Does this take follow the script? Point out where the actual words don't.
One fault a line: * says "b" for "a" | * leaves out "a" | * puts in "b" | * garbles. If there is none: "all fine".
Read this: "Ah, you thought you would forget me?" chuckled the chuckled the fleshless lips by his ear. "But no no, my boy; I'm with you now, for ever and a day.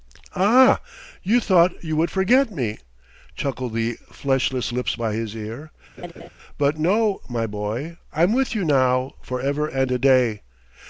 * leaves out "chuckled the"
* leaves out "no"